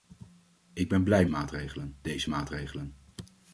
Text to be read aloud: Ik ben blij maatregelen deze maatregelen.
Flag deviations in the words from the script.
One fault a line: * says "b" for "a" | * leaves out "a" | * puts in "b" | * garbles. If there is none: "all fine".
all fine